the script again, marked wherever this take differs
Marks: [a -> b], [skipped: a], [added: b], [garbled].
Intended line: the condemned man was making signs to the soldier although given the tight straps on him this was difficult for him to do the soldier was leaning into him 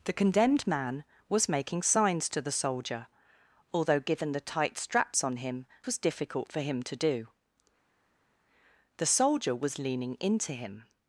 the condemned man was making signs to the soldier although given the tight straps on him [skipped: this] was difficult for him to do the soldier was leaning into him